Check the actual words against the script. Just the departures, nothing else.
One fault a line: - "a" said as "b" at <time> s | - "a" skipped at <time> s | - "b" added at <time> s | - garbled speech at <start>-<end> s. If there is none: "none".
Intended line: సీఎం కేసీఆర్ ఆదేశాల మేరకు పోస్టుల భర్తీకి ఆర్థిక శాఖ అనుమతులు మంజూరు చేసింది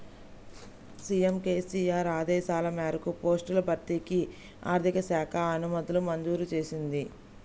none